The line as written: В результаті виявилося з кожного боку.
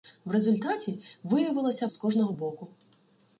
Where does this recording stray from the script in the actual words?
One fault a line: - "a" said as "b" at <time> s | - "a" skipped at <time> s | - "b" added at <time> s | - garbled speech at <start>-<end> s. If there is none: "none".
none